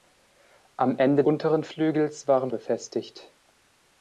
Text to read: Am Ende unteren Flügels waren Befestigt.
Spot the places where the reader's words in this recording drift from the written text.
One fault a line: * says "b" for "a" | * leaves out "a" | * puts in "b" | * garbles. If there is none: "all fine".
all fine